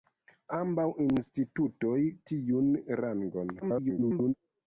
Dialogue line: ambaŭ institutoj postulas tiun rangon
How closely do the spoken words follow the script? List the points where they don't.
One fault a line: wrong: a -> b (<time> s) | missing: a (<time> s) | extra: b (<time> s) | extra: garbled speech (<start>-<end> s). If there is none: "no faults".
missing: postulas (2.0 s)
extra: garbled speech (3.6-4.3 s)